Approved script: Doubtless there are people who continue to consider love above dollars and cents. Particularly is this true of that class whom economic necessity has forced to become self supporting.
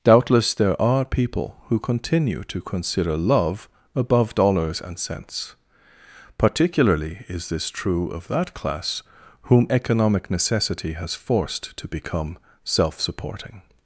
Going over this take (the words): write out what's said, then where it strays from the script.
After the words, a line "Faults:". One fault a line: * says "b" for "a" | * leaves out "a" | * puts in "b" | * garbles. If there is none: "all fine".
Doubtless there are people who continue to consider love above dollars and cents. Particularly is this true of that class whom economic necessity has forced to become self supporting.
Faults:
all fine